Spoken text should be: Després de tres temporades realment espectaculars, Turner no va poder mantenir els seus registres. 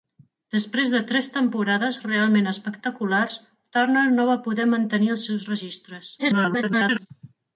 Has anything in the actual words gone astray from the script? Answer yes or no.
yes